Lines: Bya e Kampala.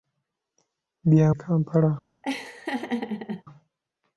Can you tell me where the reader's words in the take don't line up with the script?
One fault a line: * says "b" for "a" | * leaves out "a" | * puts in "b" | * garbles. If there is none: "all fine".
all fine